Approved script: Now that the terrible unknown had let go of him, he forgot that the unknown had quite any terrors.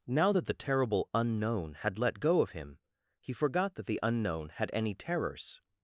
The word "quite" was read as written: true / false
false